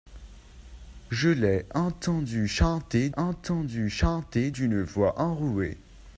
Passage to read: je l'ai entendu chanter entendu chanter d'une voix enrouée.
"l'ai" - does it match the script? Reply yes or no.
yes